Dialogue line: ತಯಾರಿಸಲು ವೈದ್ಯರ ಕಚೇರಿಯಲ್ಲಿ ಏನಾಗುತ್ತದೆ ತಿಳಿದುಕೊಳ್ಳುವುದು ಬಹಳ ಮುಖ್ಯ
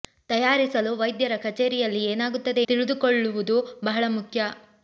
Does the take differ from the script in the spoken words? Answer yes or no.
no